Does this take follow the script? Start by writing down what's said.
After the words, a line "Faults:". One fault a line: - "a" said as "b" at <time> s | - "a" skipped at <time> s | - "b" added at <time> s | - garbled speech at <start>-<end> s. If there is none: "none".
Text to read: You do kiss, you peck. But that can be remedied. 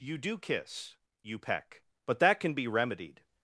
You do kiss, you peck. But that can be remedied.
Faults:
none